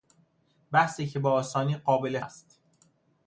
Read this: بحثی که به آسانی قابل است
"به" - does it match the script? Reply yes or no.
yes